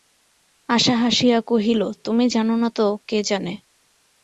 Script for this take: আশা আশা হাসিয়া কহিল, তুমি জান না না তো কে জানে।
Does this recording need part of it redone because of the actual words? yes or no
yes